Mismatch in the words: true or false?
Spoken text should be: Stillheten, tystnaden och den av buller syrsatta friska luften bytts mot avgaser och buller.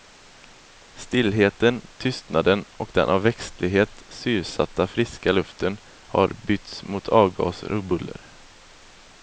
true